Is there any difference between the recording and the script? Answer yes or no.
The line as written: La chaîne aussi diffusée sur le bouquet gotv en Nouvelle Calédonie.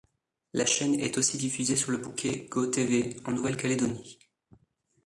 yes